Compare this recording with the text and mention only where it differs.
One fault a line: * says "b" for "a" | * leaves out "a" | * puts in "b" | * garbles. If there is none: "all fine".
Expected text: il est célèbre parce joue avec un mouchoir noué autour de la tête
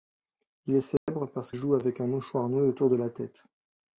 all fine